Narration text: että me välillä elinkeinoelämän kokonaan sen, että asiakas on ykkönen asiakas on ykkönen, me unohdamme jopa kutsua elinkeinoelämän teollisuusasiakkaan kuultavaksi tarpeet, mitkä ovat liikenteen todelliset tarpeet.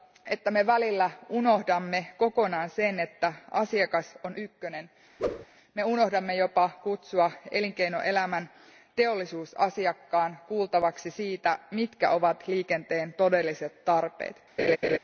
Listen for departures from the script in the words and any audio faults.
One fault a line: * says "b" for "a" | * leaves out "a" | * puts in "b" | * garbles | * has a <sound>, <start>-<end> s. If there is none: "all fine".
* says "unohdamme" for "elinkeinoelämän"
* leaves out "asiakas on ykkönen"
* has a whoosh, 5.2-5.5 s
* says "siitä" for "tarpeet"
* has a laugh, 14.6-15.0 s